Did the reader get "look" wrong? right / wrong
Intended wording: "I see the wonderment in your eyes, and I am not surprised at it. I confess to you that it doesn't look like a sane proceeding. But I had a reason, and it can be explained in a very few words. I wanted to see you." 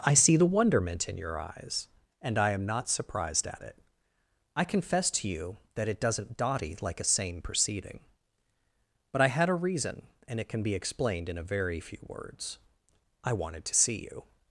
wrong